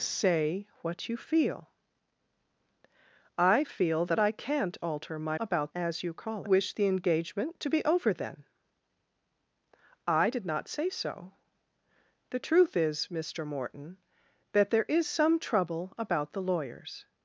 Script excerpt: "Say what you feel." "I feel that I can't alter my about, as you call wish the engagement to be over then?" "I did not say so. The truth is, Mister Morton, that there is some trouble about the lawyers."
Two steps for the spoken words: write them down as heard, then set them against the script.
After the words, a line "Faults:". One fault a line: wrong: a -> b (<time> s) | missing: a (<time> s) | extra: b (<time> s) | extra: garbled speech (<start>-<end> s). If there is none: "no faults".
"Say what you feel." "I feel that I can't alter my about, as you call wish the engagement to be over then?" "I did not say so. The truth is, Mister Morton, that there is some trouble about the lawyers."
Faults:
no faults